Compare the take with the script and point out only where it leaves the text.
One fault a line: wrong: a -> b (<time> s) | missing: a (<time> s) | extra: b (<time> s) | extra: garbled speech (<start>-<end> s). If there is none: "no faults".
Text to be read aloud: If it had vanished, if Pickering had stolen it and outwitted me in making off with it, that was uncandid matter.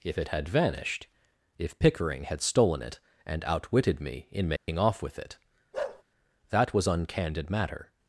no faults